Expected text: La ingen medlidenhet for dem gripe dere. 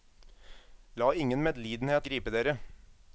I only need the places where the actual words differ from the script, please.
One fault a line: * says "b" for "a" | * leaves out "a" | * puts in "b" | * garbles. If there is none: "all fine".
* leaves out "for dem"